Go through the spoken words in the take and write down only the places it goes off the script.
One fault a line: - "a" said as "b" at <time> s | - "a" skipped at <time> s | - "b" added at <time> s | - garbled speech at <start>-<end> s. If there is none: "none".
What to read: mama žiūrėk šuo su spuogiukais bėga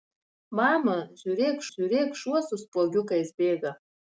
- "žiūrėk" added at 1.7 s